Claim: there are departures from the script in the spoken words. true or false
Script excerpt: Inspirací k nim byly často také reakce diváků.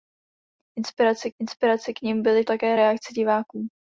true